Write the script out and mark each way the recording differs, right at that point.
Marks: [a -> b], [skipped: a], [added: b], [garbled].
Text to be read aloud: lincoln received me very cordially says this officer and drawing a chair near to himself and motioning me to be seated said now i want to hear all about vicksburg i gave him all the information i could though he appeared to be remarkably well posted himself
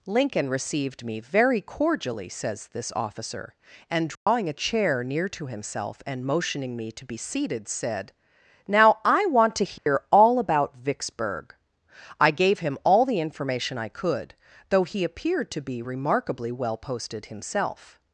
lincoln received me very cordially says this officer and drawing a chair near to himself and motioning me to be seated said now i want to hear all about vicksburg i gave him all the information i could though he appeared to be remarkably well posted himself